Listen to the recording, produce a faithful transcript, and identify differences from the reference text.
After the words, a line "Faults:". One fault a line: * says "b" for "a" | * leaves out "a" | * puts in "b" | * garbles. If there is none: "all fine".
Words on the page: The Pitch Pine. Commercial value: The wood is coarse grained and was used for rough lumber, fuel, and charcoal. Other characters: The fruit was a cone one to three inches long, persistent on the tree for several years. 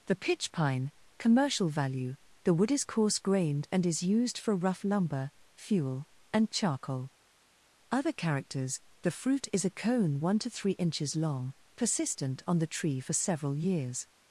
The Pitch Pine. Commercial value: The wood is coarse grained and is used for rough lumber, fuel, and charcoal. Other characters: The fruit is a cone one to three inches long, persistent on the tree for several years.
Faults:
* says "is" for "was"
* says "is" for "was"